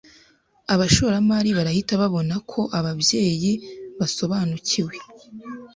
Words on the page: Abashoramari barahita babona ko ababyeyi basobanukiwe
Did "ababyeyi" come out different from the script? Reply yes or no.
no